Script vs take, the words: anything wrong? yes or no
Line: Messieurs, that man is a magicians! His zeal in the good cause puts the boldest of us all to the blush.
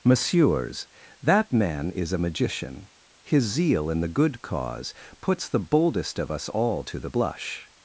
yes